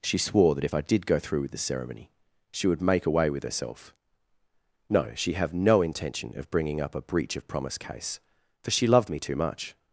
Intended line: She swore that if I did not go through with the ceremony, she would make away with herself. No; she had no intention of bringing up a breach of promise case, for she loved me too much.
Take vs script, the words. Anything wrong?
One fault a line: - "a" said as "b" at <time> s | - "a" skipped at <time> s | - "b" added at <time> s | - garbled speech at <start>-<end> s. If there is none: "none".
- "not" skipped at 1.1 s
- "had" said as "have" at 5.3 s